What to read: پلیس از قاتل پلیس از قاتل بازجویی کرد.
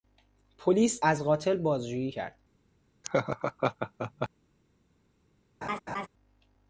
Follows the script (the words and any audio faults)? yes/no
no